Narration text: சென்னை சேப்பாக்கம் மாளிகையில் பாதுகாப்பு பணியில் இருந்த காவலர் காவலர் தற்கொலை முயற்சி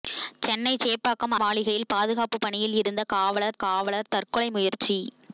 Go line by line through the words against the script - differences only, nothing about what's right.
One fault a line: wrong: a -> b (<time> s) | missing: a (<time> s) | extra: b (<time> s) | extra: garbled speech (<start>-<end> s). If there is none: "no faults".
no faults